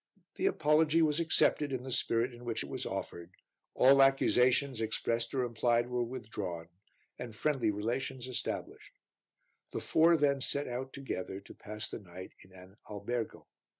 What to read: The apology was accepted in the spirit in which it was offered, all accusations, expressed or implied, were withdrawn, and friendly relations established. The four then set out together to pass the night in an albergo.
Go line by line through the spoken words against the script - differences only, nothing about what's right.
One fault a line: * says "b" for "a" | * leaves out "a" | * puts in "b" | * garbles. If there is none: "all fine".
all fine